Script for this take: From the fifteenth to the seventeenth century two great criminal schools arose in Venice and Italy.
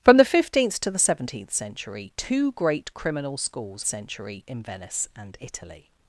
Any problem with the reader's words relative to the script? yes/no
yes